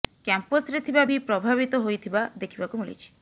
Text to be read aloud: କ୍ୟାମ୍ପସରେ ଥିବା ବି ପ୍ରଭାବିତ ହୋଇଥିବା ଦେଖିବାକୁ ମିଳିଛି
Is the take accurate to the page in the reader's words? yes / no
yes